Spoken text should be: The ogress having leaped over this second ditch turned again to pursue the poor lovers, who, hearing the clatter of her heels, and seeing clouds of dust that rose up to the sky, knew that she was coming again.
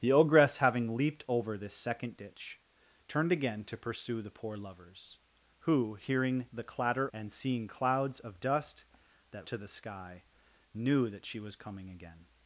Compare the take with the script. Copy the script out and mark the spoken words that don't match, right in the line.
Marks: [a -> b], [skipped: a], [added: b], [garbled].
The ogress having leaped over this second ditch turned again to pursue the poor lovers, who, hearing the clatter [skipped: of her heels,] and seeing clouds of dust that [skipped: rose up] to the sky, knew that she was coming again.